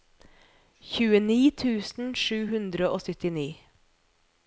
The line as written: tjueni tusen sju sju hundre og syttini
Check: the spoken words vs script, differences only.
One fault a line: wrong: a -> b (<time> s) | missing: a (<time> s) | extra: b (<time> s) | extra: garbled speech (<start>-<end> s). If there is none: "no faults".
missing: sju (2.4 s)